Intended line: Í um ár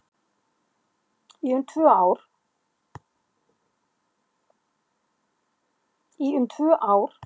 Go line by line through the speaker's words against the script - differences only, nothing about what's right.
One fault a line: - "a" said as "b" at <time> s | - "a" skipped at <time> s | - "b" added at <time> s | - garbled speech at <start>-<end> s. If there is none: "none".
- "tvö" added at 6.5 s